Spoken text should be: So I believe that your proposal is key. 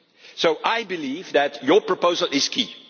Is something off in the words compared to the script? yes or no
no